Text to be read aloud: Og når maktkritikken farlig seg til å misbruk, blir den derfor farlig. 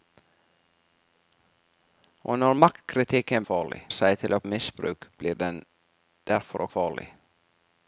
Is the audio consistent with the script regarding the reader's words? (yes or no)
yes